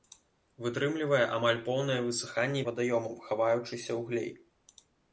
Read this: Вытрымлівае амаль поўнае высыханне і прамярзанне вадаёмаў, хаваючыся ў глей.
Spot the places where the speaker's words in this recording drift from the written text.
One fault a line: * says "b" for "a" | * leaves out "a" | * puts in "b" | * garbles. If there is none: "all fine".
* leaves out "прамярзанне"